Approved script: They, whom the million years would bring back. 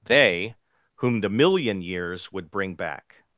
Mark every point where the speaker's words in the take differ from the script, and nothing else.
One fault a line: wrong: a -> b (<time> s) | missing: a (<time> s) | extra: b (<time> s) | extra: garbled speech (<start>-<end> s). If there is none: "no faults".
no faults